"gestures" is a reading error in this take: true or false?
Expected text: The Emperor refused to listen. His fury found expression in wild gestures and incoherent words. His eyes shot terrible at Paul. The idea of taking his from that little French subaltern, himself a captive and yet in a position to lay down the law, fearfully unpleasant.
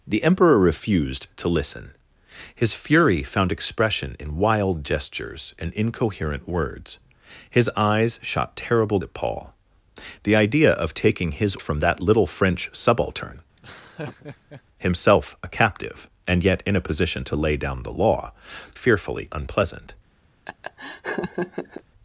false